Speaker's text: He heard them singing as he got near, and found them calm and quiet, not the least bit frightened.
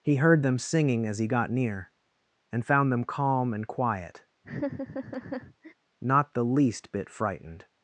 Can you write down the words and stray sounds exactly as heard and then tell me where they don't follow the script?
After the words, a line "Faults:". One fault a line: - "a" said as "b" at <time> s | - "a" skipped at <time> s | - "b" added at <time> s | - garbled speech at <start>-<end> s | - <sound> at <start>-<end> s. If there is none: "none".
He heard them singing as he got near, and found them calm and quiet, not the least bit frightened.
Faults:
- laugh at 4.4-5.7 s